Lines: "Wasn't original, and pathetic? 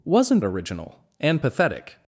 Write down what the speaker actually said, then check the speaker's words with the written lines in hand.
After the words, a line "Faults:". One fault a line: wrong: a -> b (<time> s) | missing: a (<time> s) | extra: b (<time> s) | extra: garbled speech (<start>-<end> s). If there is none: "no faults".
"Wasn't original, and pathetic?
Faults:
no faults